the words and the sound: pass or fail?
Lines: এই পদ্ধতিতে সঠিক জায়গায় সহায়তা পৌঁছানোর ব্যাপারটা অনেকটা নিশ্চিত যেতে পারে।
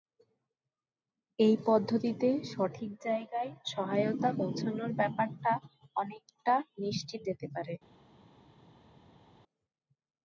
pass